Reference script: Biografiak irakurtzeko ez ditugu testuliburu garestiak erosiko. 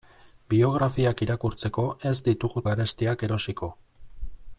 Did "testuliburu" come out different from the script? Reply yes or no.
yes